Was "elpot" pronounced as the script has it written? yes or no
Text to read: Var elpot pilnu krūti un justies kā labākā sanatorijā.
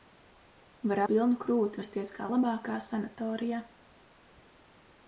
no